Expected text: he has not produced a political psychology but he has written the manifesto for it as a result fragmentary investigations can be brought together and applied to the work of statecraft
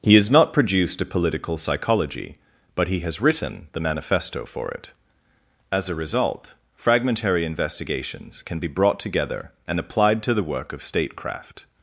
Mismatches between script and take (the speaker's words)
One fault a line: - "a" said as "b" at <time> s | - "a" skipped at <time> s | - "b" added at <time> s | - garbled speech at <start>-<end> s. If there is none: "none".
none